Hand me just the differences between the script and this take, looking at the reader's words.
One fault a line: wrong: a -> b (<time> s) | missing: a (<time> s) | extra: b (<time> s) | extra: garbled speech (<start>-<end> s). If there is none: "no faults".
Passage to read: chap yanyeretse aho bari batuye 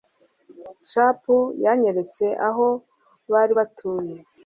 no faults